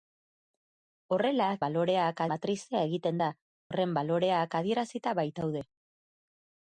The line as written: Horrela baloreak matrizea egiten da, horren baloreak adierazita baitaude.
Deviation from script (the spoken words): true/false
false